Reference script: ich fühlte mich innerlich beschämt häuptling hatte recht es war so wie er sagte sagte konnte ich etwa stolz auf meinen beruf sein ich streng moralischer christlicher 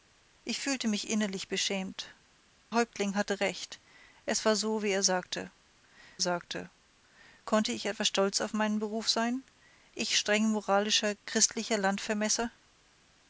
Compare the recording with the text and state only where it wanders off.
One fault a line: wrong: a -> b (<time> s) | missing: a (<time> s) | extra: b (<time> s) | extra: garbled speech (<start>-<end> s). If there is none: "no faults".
no faults